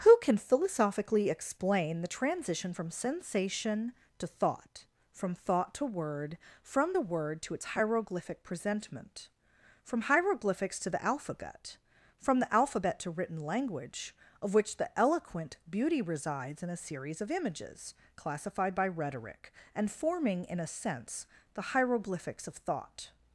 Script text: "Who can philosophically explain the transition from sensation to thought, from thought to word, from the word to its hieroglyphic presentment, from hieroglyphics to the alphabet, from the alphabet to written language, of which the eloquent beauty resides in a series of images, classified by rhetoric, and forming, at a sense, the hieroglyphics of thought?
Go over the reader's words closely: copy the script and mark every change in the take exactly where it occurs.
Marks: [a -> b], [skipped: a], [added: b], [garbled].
"Who can philosophically explain the transition from sensation to thought, from thought to word, from the word to its hieroglyphic presentment, from hieroglyphics to the alphabet, from the alphabet to written language, of which the eloquent beauty resides in a series of images, classified by rhetoric, and forming, [at -> in] a sense, the hieroglyphics of thought?